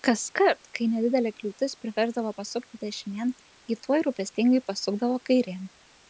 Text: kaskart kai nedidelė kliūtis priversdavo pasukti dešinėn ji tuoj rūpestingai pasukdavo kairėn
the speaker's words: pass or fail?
pass